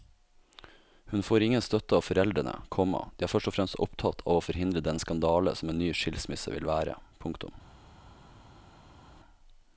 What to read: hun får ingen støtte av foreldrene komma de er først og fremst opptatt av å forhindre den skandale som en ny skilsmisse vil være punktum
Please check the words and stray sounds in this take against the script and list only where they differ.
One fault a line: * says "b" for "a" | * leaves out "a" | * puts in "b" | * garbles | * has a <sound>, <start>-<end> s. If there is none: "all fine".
all fine